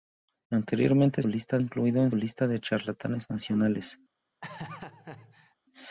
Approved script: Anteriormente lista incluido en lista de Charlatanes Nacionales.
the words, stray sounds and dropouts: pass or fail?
fail